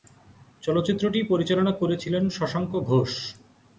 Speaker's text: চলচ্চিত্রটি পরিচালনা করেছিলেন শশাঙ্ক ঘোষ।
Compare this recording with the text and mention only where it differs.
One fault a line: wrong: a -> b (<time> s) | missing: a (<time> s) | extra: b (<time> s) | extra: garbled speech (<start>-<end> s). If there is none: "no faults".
no faults